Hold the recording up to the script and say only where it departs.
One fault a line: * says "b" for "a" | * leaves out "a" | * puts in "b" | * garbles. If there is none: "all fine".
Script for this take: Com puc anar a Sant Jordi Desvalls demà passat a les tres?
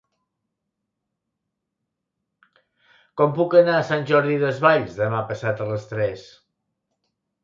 all fine